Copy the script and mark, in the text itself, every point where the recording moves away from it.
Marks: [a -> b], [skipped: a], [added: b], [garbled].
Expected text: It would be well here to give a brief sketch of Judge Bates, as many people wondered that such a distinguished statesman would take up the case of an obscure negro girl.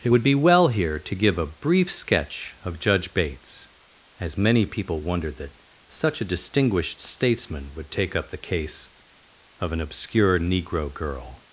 It would be well here to give a brief sketch of Judge Bates, as many people wondered that such a distinguished statesman would take up the case of an obscure negro girl.